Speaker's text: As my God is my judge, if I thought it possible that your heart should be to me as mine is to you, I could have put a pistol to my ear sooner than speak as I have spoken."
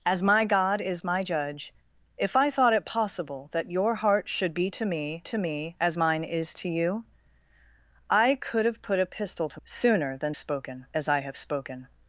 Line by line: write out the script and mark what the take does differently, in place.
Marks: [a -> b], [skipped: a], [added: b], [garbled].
As my God is my judge, if I thought it possible that your heart should be to me [added: to me] as mine is to you, I could have put a pistol to [skipped: my ear] sooner than [speak -> spoken] as I have spoken."